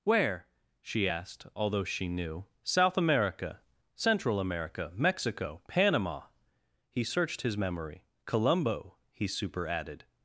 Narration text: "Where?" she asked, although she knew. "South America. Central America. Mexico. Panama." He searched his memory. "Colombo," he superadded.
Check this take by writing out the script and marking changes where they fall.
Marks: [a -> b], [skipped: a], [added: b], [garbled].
"Where?" she asked, although she knew. "South America. Central America. Mexico. Panama." He searched his memory. "Colombo," he superadded.